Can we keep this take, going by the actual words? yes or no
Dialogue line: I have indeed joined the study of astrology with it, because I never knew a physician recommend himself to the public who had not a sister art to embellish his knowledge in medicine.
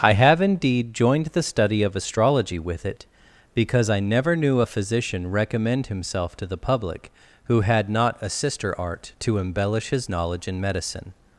yes